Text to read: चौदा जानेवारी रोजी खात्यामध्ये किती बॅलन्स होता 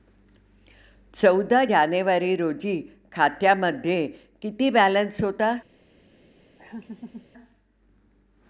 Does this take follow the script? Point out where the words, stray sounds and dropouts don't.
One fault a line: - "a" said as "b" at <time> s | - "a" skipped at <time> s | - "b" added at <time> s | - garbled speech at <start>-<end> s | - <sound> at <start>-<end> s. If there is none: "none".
- laugh at 6.6-7.3 s